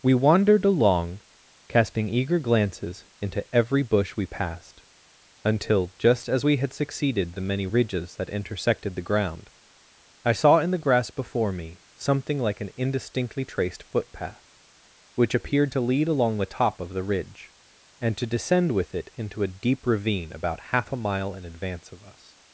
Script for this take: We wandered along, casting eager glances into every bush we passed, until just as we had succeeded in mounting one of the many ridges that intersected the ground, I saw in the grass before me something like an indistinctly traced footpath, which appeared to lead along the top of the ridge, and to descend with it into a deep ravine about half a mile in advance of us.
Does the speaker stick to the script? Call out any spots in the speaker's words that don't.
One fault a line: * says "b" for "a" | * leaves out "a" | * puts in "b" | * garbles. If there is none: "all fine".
* leaves out "in mounting one of"